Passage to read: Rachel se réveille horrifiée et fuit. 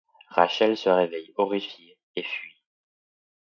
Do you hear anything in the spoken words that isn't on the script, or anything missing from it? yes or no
no